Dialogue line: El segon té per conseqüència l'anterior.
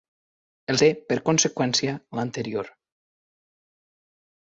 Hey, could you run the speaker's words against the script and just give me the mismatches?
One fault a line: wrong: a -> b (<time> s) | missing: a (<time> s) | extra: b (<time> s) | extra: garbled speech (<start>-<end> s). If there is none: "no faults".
missing: segon (0.8 s)